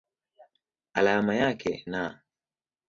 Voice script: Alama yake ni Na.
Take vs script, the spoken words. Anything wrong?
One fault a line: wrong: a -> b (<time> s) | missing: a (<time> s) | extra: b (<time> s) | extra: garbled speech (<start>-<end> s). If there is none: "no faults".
missing: ni (1.9 s)